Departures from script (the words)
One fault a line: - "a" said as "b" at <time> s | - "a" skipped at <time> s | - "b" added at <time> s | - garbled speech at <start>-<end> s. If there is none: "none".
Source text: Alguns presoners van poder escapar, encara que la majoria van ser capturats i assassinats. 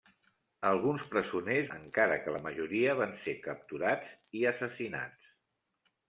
- "van poder escapar" skipped at 1.7 s